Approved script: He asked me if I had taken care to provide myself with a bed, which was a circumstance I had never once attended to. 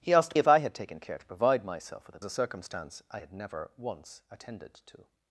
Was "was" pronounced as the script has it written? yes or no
no